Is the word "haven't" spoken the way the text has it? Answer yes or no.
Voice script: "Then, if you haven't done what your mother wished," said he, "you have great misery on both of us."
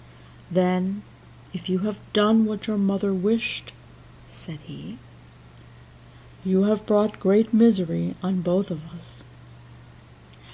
no